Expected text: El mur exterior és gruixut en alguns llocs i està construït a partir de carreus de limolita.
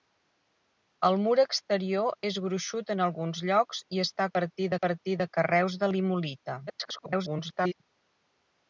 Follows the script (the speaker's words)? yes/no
no